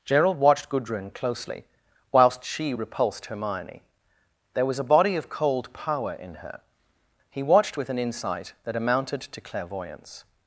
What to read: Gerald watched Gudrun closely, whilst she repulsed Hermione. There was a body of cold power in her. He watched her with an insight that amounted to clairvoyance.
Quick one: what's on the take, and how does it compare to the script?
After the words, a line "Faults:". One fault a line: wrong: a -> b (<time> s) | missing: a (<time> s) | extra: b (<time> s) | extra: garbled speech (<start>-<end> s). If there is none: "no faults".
Gerald watched Gudrun closely, whilst she repulsed Hermione. There was a body of cold power in her. He watched with an insight that amounted to clairvoyance.
Faults:
missing: her (7.8 s)